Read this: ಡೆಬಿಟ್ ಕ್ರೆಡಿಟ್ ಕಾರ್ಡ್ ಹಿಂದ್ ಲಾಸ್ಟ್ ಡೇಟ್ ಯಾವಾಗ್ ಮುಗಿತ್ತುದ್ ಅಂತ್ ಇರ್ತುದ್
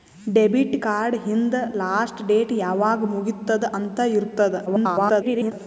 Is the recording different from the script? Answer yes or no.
yes